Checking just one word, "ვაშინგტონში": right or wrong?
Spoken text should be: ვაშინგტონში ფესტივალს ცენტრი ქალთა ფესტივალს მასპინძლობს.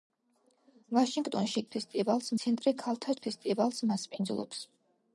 right